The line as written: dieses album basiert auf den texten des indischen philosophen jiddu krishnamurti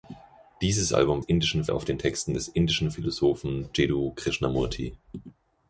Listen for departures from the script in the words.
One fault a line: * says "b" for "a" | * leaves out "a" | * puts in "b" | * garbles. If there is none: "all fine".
* says "indischen" for "basiert"